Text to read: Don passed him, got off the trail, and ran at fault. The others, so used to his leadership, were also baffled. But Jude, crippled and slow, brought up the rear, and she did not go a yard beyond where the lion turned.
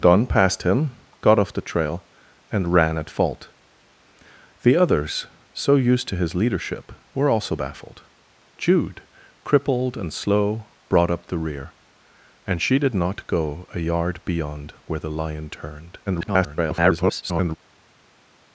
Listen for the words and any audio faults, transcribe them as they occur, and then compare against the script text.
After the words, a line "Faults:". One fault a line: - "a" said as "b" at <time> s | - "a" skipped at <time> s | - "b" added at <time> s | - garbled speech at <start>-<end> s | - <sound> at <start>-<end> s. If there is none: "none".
Don passed him, got off the trail, and ran at fault. The others, so used to his leadership, were also baffled. Jude, crippled and slow, brought up the rear, and she did not go a yard beyond where the lion turned. [garbled]
Faults:
- "But" skipped at 8.0 s
- garbled speech at 16.1-17.6 s